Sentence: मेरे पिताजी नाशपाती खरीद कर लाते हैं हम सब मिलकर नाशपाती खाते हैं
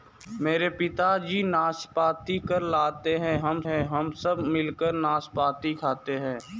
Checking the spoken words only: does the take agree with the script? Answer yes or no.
no